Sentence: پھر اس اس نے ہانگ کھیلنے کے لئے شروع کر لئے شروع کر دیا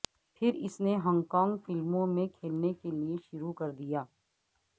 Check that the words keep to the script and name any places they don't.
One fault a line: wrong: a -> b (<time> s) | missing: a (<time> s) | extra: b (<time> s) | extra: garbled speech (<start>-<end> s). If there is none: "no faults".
missing: اس (0.8 s)
wrong: کھیلنے کے لئے شروع کر -> کانگ فلموں میں کھیلنے کے (1.3 s)